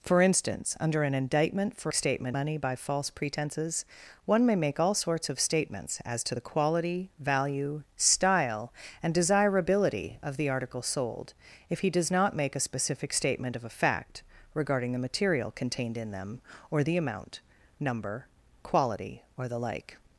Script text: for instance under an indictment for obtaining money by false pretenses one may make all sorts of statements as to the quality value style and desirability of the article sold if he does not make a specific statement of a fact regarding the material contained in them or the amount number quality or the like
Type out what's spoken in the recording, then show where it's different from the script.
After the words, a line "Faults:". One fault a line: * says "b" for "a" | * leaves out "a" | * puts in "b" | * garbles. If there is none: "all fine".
for instance under an indictment for statement money by false pretenses one may make all sorts of statements as to the quality value style and desirability of the article sold if he does not make a specific statement of a fact regarding the material contained in them or the amount number quality or the like
Faults:
* says "statement" for "obtaining"